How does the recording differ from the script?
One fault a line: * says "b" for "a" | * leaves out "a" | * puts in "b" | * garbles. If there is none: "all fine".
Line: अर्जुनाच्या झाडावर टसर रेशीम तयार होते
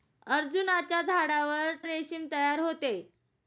* leaves out "टसर"